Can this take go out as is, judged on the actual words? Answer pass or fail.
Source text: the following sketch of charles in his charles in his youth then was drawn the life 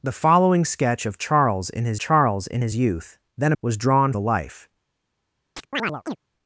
pass